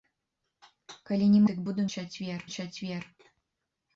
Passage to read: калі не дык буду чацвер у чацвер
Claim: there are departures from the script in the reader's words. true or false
false